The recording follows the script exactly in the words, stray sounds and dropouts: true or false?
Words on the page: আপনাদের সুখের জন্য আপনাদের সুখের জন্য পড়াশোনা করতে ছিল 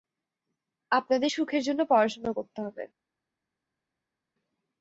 false